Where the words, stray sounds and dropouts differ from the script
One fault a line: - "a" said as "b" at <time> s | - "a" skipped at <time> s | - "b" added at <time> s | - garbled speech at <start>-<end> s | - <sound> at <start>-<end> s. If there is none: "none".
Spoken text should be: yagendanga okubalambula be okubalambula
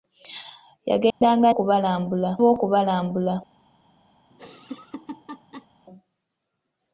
- dropout at 1.1-1.2 s
- laugh at 4.3-5.7 s